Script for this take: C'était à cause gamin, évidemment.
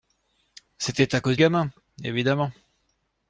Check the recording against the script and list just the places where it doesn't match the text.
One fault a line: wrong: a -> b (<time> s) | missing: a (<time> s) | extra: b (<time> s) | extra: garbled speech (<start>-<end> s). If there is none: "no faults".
no faults